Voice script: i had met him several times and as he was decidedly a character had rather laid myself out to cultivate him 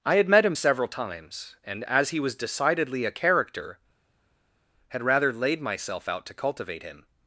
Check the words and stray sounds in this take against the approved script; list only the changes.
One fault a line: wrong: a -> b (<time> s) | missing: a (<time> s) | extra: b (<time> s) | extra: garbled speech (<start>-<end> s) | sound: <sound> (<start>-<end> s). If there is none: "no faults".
no faults